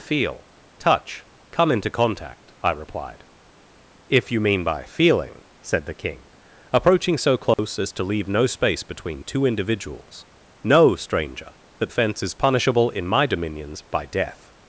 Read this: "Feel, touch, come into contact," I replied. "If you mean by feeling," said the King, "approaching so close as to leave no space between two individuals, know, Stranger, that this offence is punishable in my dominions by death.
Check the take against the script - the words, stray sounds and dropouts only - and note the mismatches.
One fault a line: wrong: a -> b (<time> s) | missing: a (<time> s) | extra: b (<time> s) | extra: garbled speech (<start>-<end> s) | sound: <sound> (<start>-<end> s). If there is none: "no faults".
sound: dropout (7.5-7.6 s)
missing: this (11.9 s)